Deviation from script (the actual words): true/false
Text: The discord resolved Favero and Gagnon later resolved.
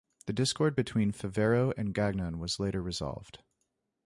true